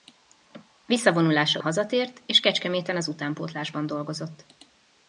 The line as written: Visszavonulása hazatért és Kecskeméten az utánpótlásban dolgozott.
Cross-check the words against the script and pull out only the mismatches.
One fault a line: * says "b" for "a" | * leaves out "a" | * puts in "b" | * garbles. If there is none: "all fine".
all fine